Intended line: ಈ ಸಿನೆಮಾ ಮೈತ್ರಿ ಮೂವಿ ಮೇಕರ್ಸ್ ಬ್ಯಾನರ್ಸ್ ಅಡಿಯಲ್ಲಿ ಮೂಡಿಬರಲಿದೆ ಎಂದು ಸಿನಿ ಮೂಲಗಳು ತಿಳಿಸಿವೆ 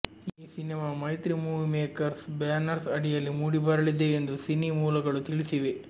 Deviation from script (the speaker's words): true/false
false